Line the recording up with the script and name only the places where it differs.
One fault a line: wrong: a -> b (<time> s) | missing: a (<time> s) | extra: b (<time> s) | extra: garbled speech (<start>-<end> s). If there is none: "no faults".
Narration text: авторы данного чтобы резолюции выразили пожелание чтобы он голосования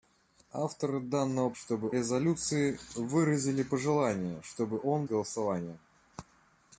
no faults